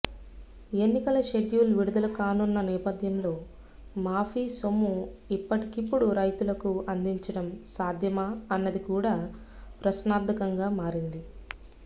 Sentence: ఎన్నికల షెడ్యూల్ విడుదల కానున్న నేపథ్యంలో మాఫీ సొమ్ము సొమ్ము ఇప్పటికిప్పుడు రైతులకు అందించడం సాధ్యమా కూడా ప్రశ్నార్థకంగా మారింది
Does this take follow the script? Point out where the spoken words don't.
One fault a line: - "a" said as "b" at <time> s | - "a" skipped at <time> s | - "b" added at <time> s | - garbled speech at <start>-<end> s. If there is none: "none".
- "సొమ్ము" skipped at 4.9 s
- "అన్నది" added at 8.5 s